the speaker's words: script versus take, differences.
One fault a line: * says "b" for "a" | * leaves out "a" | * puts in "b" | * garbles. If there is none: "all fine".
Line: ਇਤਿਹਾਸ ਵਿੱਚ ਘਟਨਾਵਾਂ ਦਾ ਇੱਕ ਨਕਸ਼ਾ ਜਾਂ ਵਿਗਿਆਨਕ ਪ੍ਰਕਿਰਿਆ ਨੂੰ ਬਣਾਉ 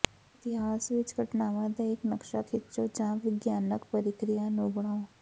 * puts in "ਖਿੱਚੋ"